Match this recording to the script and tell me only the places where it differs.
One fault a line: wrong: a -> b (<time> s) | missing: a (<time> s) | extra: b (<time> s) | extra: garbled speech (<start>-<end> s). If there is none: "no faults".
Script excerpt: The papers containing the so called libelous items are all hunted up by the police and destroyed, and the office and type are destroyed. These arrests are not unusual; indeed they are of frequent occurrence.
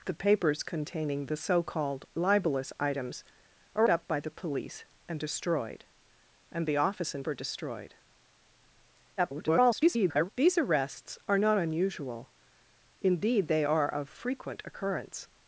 missing: all hunted (3.9 s)
missing: type (7.3 s)
extra: garbled speech (9.2-10.3 s)